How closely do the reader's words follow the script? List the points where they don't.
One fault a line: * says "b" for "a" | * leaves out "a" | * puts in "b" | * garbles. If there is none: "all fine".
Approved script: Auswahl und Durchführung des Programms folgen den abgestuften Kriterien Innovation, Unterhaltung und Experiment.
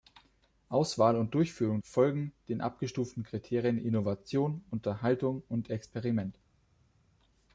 * leaves out "des Programms"